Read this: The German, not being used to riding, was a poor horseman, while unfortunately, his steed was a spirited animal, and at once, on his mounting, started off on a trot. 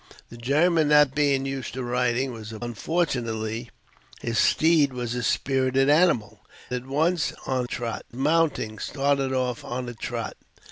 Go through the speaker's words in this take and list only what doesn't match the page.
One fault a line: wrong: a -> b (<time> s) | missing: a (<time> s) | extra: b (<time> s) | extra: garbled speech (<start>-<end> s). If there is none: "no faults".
missing: poor horseman while (2.6 s)
missing: and (6.4 s)
wrong: his -> trot (7.6 s)